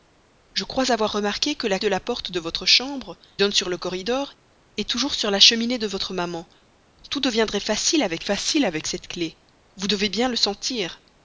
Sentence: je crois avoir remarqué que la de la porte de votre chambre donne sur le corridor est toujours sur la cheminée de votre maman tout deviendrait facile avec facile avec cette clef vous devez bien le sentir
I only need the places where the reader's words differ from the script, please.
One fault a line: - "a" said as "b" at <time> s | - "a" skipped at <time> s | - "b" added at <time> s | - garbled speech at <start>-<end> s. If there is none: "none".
none